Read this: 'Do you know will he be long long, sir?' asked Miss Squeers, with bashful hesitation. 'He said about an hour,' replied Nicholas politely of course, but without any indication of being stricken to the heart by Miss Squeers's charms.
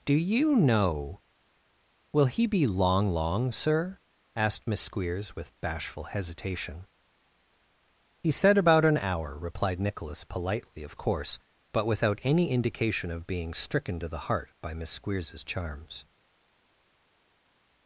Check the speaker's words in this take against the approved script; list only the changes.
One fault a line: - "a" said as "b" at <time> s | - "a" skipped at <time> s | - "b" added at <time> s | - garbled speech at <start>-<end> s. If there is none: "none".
none